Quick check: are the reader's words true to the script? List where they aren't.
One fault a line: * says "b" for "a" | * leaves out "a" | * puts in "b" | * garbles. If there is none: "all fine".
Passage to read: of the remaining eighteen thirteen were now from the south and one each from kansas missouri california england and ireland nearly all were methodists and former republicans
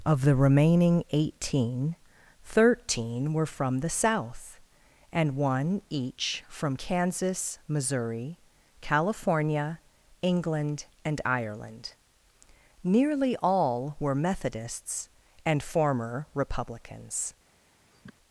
* leaves out "now"